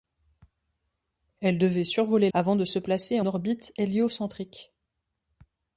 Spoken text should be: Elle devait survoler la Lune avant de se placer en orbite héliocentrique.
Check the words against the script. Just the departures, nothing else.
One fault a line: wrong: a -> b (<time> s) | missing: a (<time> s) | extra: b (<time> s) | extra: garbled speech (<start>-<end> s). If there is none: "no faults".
missing: la Lune (2.3 s)
missing: en (3.2 s)